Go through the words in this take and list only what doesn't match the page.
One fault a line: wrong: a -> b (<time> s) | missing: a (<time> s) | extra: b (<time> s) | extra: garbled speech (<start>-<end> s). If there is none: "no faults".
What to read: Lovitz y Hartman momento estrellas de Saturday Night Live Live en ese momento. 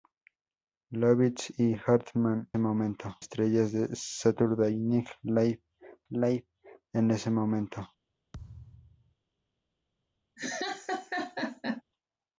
no faults